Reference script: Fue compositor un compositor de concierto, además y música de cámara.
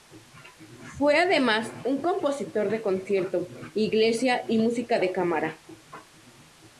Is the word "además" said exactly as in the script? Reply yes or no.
no